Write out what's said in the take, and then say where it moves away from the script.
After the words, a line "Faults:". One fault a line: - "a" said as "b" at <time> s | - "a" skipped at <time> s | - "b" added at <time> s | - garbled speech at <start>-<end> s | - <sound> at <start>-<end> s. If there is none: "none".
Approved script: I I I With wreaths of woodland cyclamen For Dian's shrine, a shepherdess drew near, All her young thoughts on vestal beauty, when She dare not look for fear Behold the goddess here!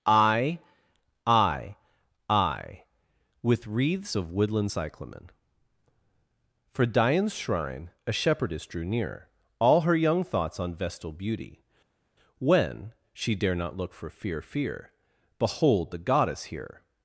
I I I With wreaths of woodland cyclamen For Dian's shrine, a shepherdess drew near, All her young thoughts on vestal beauty, when She dare not look for fear fear Behold the goddess here!
Faults:
- "fear" added at 14.4 s